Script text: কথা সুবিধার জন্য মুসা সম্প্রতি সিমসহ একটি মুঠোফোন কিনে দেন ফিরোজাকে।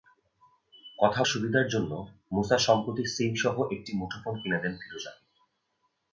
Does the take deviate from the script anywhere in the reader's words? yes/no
no